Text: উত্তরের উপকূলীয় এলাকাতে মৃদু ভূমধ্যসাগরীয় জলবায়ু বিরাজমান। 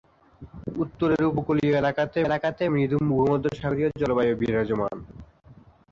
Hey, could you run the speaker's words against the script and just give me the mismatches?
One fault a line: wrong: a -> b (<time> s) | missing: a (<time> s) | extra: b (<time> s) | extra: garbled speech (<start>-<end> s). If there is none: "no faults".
extra: এলাকাতে (2.2 s)